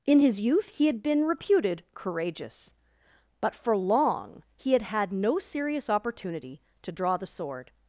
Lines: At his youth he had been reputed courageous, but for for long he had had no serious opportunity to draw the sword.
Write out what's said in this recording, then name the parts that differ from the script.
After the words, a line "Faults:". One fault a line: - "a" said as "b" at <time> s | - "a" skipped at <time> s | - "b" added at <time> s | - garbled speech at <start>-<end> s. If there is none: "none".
In his youth he had been reputed courageous, but for long he had had no serious opportunity to draw the sword.
Faults:
- "At" said as "In" at 0.1 s
- "for" skipped at 3.8 s